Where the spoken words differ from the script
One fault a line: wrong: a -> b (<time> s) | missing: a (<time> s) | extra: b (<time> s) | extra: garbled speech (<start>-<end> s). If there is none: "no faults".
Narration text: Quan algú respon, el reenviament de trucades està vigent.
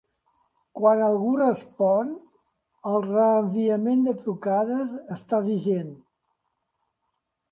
no faults